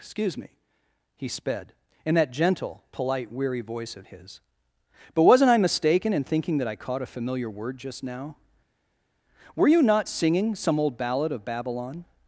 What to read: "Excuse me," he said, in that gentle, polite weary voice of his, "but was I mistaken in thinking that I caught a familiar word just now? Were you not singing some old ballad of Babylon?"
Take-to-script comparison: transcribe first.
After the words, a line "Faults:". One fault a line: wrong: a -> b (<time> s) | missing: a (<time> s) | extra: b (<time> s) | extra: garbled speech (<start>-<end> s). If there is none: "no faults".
"Excuse me," he sped, in that gentle, polite weary voice of his, "but wasn't I mistaken in thinking that I caught a familiar word just now? Were you not singing some old ballad of Babylon?"
Faults:
wrong: said -> sped (1.3 s)
wrong: was -> wasn't (5.2 s)